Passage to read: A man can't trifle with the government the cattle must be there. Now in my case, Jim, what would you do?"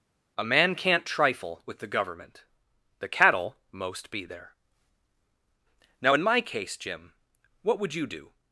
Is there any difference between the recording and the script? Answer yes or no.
yes